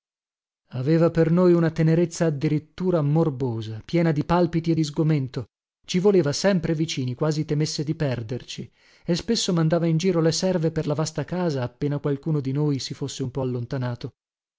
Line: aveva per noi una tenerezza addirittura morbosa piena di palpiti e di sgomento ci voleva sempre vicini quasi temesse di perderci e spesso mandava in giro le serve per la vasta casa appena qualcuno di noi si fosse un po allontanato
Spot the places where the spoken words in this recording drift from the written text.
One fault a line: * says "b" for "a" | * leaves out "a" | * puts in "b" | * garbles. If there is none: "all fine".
all fine